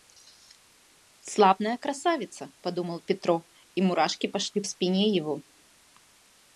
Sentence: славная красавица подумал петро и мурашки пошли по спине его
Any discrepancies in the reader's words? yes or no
yes